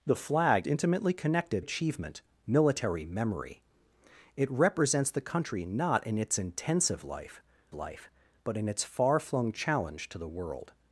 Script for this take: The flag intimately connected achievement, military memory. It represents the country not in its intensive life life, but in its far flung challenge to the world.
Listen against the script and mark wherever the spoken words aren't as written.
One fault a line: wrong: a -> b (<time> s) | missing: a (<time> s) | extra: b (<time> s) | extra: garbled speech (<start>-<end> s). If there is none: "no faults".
no faults